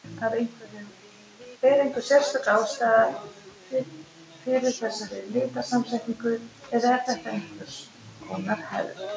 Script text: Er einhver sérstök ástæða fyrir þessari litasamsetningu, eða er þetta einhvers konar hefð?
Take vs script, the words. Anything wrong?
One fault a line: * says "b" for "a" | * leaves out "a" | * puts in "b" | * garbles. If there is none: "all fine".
all fine